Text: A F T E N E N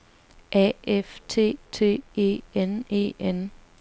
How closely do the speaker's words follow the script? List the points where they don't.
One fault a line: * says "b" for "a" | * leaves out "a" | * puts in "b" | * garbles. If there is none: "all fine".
* puts in "T"